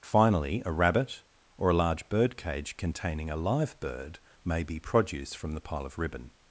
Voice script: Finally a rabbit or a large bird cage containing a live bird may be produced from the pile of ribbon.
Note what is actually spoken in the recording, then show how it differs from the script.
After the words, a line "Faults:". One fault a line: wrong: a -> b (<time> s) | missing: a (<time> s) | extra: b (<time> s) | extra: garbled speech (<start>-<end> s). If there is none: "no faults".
Finally a rabbit or a large bird cage containing a live bird may be produce from the pile of ribbon.
Faults:
wrong: produced -> produce (4.8 s)